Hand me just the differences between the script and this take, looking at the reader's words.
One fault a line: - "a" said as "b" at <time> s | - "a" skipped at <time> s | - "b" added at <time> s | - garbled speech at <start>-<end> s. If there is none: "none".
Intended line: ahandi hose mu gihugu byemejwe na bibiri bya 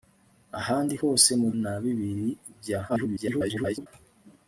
- "gihugu byemejwe" skipped at 1.5 s
- garbled speech at 2.9-3.9 s